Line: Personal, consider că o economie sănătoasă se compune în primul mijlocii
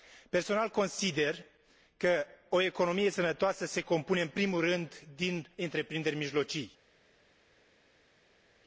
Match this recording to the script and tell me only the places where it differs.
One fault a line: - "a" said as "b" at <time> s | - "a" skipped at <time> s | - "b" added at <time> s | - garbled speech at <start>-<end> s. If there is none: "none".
- "rând din întreprinderi" added at 4.6 s